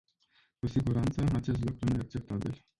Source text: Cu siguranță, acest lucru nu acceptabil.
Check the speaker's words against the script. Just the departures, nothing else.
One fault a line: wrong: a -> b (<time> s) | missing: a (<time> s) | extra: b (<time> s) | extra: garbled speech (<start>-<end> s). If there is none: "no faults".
no faults